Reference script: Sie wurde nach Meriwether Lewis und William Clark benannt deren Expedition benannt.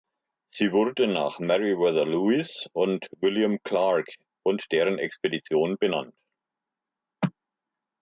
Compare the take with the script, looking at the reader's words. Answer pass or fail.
fail